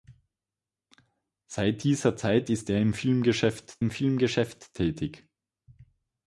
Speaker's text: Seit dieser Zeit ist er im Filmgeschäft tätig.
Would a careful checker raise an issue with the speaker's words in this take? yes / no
yes